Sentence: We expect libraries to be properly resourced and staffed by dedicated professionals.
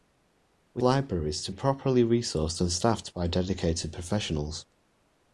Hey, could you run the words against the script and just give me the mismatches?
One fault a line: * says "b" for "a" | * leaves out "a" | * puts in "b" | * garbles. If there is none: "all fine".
* leaves out "expect"
* leaves out "be"